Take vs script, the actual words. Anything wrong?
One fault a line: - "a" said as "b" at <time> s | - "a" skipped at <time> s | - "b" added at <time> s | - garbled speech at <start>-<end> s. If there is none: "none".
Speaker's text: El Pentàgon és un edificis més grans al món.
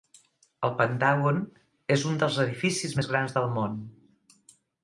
- "dels" added at 2.2 s
- "al" said as "del" at 3.4 s